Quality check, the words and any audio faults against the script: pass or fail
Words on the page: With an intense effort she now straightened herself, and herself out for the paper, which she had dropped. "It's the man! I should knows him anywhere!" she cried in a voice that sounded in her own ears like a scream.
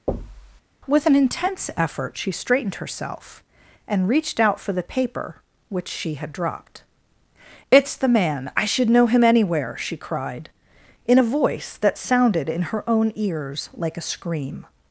fail